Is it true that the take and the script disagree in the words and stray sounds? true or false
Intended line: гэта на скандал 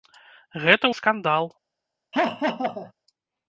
true